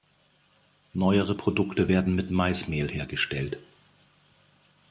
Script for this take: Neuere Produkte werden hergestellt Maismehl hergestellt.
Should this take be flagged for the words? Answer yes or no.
yes